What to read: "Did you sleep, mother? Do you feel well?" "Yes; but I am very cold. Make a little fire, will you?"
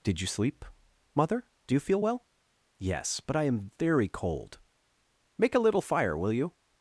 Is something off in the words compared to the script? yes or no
no